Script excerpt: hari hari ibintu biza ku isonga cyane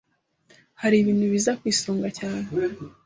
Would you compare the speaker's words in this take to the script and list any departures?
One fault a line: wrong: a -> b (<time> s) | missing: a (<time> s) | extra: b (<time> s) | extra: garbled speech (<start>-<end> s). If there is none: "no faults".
missing: hari (0.9 s)